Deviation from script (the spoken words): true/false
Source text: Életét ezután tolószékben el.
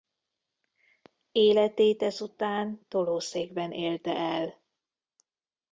true